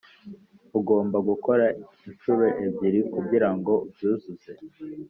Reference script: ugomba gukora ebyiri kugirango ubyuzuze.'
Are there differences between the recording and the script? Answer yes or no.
yes